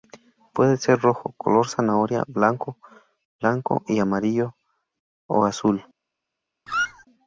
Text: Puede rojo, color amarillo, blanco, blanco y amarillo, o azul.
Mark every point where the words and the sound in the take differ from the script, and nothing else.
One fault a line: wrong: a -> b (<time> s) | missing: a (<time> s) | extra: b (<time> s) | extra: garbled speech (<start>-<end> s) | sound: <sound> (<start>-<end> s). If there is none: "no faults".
extra: ser (0.8 s)
wrong: amarillo -> zanahoria (1.7 s)
sound: squeak (6.7-7.1 s)